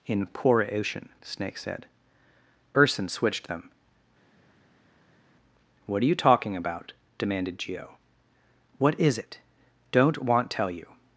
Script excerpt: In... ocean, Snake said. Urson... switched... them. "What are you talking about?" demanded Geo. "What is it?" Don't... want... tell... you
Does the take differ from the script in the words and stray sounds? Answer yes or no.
yes